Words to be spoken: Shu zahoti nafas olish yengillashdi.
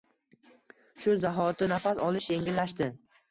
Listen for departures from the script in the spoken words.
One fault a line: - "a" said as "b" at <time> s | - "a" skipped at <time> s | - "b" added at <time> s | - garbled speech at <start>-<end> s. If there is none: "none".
none